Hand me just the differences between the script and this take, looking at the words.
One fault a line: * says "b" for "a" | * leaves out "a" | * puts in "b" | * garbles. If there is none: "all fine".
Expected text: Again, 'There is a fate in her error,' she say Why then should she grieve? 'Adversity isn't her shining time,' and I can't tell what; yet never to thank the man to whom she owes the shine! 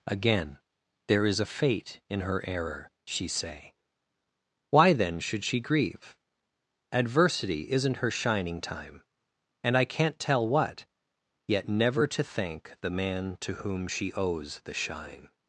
all fine